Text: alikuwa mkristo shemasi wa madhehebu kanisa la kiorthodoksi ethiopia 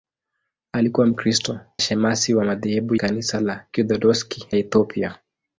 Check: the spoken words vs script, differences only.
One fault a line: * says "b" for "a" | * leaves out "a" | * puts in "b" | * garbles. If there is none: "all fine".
all fine